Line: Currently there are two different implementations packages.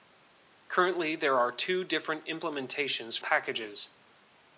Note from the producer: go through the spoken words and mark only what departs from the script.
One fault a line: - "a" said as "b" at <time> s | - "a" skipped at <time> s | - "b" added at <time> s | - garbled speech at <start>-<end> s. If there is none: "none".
none